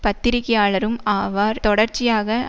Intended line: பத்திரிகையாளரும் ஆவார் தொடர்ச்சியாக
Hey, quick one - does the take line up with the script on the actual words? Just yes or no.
yes